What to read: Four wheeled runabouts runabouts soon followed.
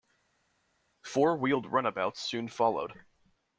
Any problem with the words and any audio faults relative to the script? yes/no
yes